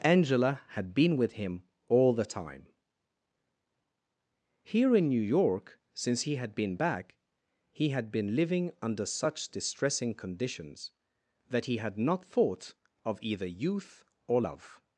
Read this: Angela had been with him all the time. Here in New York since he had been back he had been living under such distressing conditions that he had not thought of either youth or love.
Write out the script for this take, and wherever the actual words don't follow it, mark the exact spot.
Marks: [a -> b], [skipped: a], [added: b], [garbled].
Angela had been with him all the time. Here in New York since he had been back he had been living under such distressing conditions that he had not thought of either youth or love.